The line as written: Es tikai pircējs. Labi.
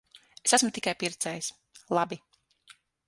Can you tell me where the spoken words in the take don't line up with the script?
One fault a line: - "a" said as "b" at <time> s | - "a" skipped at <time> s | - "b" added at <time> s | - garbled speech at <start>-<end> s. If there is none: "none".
- "esmu" added at 0.6 s